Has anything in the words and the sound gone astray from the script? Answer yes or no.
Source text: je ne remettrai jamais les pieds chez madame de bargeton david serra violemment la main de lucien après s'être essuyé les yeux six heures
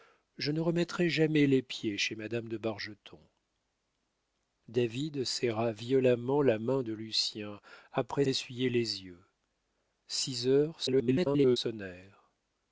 yes